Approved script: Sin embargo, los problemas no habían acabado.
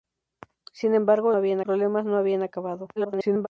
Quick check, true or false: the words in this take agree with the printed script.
false